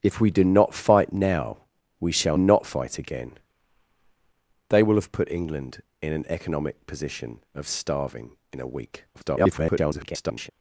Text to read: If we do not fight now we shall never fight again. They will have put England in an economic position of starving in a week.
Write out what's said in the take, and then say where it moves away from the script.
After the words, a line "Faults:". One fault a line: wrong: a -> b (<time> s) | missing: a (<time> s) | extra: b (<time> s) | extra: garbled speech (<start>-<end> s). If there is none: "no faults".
If we do not fight now we shall not fight again. They will have put England in an economic position of starving in a week. [garbled]
Faults:
wrong: never -> not (2.4 s)
extra: garbled speech (9.1-10.5 s)